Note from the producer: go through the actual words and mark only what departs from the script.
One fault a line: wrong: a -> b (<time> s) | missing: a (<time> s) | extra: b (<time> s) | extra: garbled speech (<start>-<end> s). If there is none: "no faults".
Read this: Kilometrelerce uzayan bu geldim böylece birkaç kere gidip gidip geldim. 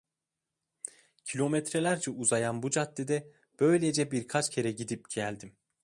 wrong: geldim -> caddede (2.7 s)
missing: gidip (5.1 s)